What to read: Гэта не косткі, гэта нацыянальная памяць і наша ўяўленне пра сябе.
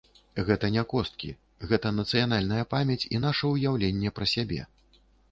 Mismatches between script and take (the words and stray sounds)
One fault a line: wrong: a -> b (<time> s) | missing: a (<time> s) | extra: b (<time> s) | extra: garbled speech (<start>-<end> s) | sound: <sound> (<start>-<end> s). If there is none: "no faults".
no faults